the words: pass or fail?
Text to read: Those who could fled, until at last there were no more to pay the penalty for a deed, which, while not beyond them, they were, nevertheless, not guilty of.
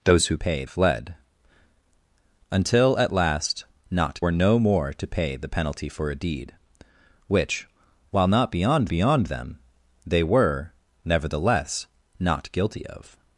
fail